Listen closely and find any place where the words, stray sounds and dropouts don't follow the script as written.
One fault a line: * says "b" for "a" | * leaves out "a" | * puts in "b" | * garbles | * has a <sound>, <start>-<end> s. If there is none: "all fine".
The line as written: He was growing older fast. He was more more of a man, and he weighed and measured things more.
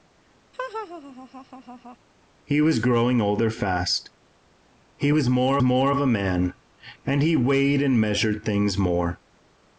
* has a laugh, 0.5-2.0 s